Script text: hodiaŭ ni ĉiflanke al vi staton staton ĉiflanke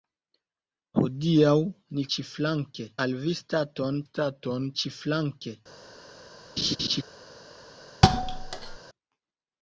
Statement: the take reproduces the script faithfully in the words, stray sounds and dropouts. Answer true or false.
false